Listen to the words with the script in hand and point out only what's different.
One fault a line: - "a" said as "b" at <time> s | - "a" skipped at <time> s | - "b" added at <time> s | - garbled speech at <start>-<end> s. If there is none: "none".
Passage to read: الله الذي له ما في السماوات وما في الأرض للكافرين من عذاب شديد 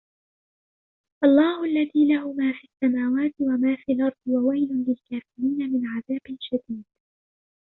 - "وويل" added at 4.3 s